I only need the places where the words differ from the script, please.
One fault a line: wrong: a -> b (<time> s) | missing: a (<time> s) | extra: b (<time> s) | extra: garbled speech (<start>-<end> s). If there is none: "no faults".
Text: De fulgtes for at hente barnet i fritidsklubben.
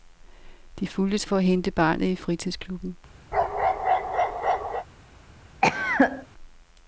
no faults